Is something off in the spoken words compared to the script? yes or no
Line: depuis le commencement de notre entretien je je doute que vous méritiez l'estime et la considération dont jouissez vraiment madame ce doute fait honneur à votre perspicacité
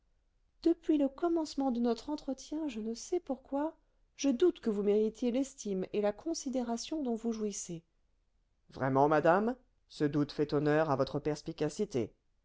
yes